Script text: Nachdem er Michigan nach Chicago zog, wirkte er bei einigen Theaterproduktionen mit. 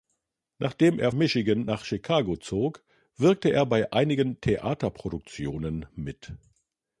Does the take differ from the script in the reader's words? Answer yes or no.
no